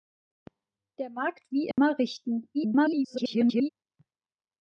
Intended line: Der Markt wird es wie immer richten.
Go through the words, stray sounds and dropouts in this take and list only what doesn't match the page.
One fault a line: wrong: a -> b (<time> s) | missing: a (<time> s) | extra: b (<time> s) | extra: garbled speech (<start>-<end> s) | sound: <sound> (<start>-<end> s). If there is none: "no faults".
missing: wird es (1.5 s)
sound: dropout (1.7-1.8 s)
extra: garbled speech (2.5-3.7 s)